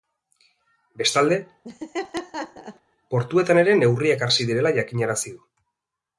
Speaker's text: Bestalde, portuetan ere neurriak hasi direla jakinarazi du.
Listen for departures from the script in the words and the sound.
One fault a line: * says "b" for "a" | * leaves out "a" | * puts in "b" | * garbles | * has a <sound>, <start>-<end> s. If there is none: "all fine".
* has a laugh, 1.6-2.8 s